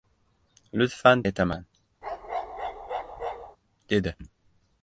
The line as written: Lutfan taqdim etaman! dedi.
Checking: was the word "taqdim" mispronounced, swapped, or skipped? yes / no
yes